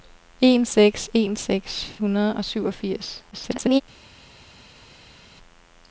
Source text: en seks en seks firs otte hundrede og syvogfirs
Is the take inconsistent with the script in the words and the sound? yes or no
yes